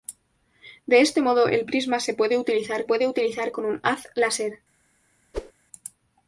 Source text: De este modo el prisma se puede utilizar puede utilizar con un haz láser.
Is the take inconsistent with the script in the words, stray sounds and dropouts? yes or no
yes